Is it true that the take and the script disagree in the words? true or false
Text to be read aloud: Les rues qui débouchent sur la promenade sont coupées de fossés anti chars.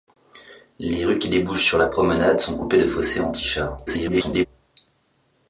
true